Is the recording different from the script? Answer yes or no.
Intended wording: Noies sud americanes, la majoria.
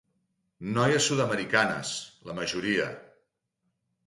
no